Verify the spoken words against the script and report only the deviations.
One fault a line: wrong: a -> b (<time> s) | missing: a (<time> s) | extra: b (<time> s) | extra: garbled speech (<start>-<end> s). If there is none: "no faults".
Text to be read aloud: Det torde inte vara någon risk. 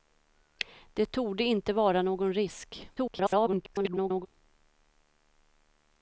extra: garbled speech (3.0-4.3 s)